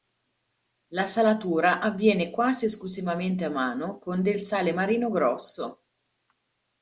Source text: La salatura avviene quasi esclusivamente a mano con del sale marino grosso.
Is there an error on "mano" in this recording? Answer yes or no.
no